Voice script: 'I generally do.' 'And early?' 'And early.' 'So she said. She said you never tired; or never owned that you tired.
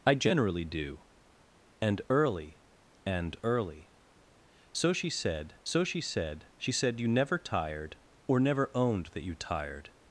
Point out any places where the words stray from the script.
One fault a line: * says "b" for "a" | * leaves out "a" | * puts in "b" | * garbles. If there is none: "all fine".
* puts in "so she said"